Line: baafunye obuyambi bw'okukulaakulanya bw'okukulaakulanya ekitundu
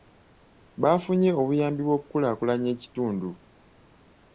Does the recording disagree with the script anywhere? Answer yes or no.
yes